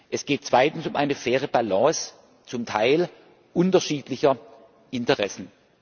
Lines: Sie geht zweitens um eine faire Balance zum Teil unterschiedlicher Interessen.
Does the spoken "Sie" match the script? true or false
false